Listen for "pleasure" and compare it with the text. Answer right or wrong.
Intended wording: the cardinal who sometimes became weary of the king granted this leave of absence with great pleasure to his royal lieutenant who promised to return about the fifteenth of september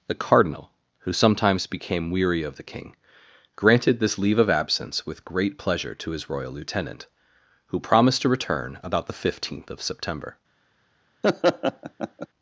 right